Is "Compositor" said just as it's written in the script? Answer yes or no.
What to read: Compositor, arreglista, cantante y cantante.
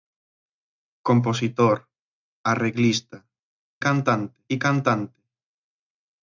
yes